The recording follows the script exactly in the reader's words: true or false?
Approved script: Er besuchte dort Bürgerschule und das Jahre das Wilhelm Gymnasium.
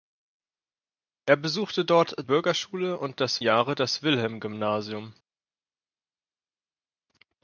true